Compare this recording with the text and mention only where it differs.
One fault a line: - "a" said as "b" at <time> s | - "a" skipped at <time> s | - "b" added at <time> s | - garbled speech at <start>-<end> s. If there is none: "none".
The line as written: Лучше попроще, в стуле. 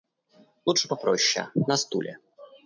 - "в" said as "на" at 1.5 s